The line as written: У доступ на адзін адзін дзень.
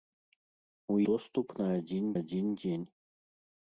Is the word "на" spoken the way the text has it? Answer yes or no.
yes